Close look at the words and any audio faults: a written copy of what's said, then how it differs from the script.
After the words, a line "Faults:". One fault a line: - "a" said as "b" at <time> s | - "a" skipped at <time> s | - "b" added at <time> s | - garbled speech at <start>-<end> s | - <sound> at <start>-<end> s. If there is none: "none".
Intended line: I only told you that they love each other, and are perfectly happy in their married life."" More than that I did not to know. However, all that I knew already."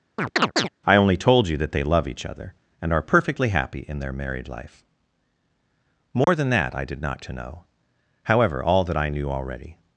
I only told you that they love each other, and are perfectly happy in their married life."" More than that I did not to know. However, all that I knew already."
Faults:
- chirp at 0.2-0.7 s
- dropout at 6.2-6.3 s